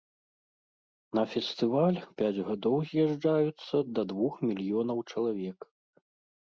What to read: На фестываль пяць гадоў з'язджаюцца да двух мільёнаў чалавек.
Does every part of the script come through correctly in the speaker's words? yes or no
yes